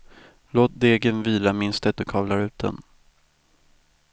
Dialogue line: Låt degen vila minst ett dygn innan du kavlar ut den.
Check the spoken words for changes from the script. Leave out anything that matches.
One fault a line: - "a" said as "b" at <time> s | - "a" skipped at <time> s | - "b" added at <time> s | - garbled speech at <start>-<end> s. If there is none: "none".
- "dygn innan" skipped at 2.0 s